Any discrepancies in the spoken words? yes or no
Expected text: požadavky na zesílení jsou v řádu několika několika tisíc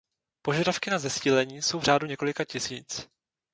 yes